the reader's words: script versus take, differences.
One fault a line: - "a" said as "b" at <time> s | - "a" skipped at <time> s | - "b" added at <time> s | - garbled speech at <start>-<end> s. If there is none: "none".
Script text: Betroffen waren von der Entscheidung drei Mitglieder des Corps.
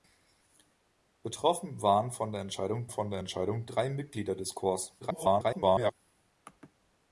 - "von der Entscheidung" added at 2.9 s
- garbled speech at 5.0-5.9 s